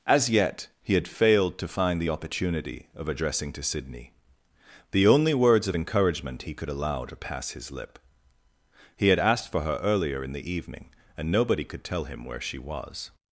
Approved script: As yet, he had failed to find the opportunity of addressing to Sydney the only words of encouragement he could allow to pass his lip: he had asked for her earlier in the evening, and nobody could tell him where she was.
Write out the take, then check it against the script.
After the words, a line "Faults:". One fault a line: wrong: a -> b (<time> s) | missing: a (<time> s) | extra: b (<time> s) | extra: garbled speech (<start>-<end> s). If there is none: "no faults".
As yet, he had failed to find the opportunity of addressing to Sydney the only words of encouragement he could allow to pass his lip: he had asked for her earlier in the evening, and nobody could tell him where she was.
Faults:
no faults